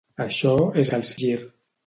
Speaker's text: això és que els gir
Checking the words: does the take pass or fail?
pass